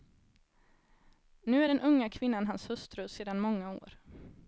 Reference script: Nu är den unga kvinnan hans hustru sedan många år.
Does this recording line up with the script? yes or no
yes